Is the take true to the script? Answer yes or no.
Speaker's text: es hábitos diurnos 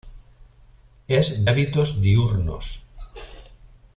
yes